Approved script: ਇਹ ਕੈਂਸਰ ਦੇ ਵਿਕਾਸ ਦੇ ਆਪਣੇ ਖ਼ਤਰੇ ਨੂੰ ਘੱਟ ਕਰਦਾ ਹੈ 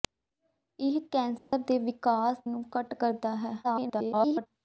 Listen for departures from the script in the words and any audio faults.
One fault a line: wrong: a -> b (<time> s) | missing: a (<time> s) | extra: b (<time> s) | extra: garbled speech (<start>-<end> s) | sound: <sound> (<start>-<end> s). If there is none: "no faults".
sound: dropout (1.4-1.5 s)
missing: ਦੇ ਆਪਣੇ ਖ਼ਤਰੇ (2.4 s)
extra: garbled speech (3.6-4.5 s)